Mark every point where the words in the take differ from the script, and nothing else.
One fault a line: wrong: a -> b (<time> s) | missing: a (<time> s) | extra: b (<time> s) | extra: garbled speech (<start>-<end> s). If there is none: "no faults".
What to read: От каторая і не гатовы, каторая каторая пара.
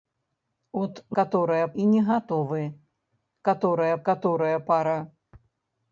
no faults